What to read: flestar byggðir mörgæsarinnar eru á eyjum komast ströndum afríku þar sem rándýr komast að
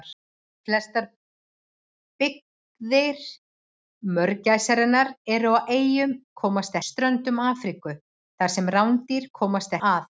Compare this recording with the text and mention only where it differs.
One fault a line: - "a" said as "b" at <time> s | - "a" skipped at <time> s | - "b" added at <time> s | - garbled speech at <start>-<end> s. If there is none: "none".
none